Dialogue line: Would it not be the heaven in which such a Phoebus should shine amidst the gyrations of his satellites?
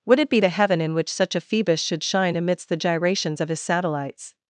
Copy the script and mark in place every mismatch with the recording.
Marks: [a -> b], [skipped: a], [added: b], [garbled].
Would it [skipped: not] be the heaven in which such a Phoebus should shine amidst the gyrations of his satellites?